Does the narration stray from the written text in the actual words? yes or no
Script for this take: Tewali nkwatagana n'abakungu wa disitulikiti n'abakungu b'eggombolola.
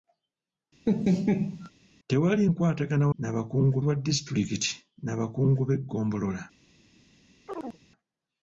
no